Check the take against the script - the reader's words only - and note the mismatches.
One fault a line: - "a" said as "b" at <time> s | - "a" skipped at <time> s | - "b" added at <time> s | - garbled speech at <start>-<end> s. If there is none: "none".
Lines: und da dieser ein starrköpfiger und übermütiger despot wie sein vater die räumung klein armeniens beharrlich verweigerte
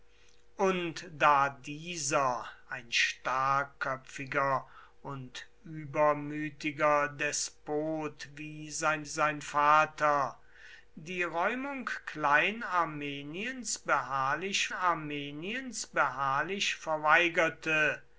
- "sein" added at 9.1 s
- "armeniens beharrlich" added at 14.7 s